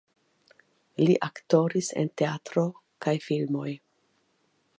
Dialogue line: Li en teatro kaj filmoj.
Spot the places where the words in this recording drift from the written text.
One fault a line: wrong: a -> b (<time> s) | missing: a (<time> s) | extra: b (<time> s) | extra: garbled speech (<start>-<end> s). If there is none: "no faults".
extra: aktoris (1.3 s)